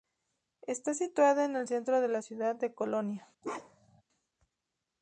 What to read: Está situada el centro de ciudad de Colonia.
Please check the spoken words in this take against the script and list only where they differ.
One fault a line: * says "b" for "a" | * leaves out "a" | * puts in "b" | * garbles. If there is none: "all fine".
* puts in "en"
* puts in "la"